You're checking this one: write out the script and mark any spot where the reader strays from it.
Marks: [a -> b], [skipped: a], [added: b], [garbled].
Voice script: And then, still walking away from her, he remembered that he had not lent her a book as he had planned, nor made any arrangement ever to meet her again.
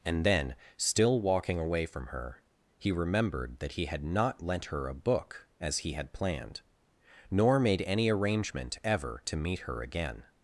And then, still walking away from her, he remembered that he had not lent her a book as he had planned, nor made any arrangement ever to meet her again.